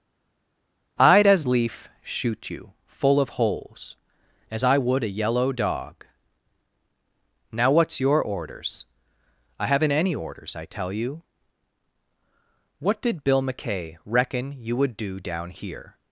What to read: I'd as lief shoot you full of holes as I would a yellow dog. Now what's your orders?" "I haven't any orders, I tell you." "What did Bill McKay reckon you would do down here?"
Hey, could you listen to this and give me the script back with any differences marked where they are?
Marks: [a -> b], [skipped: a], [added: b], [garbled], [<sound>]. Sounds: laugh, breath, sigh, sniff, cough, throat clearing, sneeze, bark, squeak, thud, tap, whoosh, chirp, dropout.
I'd as lief shoot you full of holes as I would a yellow dog. Now what's your orders?" "I haven't any orders, I tell you." "What did Bill McKay reckon you would do down here?"